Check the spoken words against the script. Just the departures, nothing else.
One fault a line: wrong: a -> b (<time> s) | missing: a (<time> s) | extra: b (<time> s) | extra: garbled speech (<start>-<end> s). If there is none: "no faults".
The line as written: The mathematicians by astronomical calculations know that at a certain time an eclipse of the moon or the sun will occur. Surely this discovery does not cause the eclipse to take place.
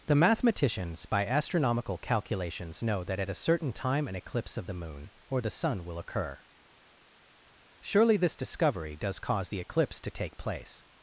missing: not (9.2 s)